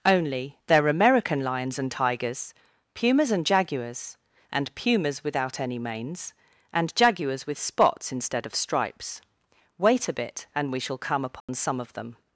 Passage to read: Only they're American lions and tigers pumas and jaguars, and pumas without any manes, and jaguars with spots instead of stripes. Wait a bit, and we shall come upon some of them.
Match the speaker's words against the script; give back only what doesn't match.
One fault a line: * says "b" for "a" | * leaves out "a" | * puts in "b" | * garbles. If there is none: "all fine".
all fine